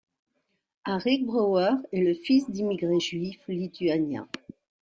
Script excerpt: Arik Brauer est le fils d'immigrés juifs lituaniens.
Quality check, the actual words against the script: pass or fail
pass